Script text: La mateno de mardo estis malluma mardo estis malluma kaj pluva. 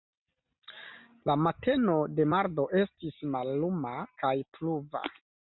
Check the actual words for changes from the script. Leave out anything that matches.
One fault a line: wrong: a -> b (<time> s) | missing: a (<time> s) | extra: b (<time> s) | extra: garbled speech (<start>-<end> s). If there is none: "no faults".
missing: mardo estis malluma (3.9 s)